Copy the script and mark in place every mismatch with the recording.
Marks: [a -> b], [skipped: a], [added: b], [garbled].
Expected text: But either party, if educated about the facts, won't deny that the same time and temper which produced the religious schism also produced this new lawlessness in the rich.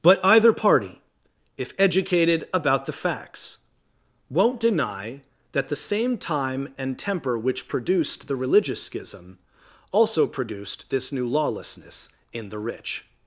But either party, if educated about the facts, won't deny that the same time and temper which produced the religious schism also produced this new lawlessness in the rich.